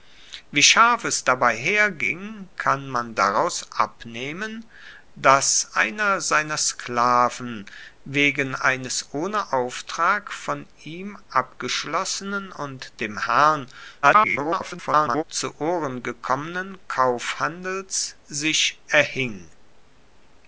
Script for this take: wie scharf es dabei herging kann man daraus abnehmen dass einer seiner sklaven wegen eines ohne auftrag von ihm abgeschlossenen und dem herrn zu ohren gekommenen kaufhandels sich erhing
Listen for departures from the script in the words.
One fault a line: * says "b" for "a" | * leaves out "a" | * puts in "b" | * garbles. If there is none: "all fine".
* garbles